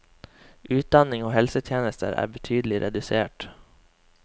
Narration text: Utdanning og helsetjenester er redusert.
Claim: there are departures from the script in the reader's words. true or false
true